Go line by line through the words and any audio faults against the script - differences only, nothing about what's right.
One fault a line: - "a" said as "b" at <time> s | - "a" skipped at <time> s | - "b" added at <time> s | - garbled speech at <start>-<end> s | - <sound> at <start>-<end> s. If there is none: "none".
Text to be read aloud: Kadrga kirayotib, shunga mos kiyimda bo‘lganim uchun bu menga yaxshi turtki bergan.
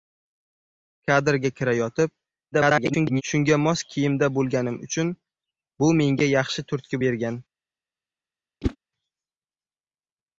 - garbled speech at 2.5-3.2 s
- whoosh at 8.6-8.8 s